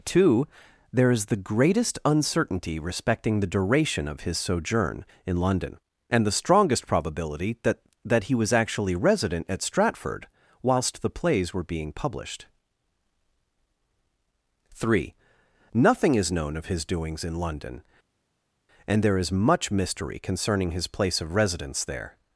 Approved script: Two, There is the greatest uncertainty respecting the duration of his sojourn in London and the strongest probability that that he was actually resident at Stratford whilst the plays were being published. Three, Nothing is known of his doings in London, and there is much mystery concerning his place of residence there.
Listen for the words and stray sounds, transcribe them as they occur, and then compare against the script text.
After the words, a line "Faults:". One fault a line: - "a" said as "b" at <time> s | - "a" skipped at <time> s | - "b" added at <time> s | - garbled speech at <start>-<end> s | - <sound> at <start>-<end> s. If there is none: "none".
Two, There is the greatest uncertainty respecting the duration of his sojourn in London and the strongest probability that that he was actually resident at Stratford whilst the plays were being published. Three, Nothing is known of his doings in London, and there is much mystery concerning his place of residence there.
Faults:
none